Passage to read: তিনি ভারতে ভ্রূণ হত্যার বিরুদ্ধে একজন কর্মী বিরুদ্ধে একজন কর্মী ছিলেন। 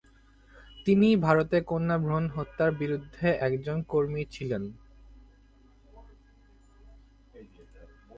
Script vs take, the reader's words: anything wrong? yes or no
yes